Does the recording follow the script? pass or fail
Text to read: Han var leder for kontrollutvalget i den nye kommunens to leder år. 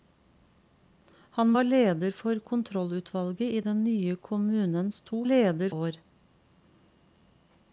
pass